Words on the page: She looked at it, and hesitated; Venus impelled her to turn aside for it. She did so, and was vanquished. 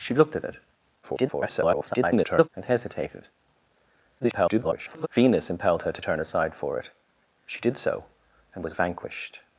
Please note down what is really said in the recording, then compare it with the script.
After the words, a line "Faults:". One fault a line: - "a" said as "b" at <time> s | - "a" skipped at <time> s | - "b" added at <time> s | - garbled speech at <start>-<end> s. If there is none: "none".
She looked at it, [garbled] and hesitated; [garbled] Venus impelled her to turn aside for it. She did so, and was vanquished.
Faults:
- garbled speech at 1.0-2.5 s
- garbled speech at 4.2-5.1 s